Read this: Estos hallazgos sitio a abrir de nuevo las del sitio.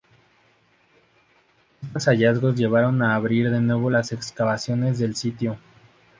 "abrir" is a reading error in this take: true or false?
false